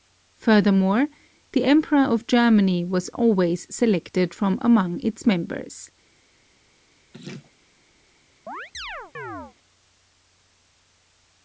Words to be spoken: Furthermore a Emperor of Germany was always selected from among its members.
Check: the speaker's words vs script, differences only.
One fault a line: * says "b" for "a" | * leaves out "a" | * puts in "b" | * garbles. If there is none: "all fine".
* says "the" for "a"